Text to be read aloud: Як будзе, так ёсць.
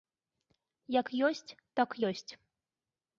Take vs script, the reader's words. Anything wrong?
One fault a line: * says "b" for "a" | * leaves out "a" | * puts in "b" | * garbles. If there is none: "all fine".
* says "ёсць" for "будзе"